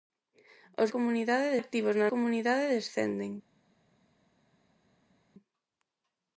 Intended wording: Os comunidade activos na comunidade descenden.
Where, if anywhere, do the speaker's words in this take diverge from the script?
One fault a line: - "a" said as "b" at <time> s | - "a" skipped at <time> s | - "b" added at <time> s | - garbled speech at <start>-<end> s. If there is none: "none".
none